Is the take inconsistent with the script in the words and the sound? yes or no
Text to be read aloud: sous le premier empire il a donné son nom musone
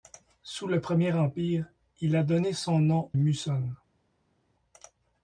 no